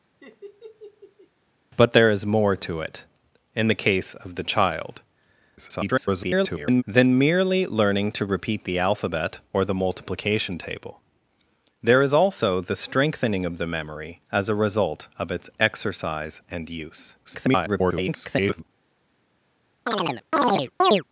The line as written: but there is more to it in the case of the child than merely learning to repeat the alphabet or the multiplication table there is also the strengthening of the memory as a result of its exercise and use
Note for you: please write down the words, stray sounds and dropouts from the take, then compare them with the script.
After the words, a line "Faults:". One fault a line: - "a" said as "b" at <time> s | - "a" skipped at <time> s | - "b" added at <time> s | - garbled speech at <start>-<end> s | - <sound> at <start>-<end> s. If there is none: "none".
but there is more to it in the case of the child [garbled] than merely learning to repeat the alphabet or the multiplication table there is also the strengthening of the memory as a result of its exercise and use [garbled]
Faults:
- laugh at 0.2-1.3 s
- garbled speech at 5.6-6.8 s
- garbled speech at 17.2-18.6 s
- chirp at 19.9-21.0 s